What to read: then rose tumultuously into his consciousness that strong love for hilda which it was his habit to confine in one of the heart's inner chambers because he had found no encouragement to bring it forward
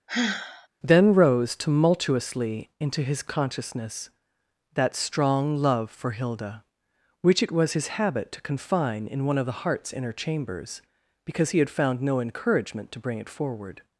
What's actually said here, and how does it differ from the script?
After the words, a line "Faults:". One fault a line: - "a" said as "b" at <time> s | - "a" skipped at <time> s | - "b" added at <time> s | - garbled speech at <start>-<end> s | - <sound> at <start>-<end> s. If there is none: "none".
then rose tumultuously into his consciousness that strong love for hilda which it was his habit to confine in one of the heart's inner chambers because he had found no encouragement to bring it forward
Faults:
- sigh at 0.1-0.7 s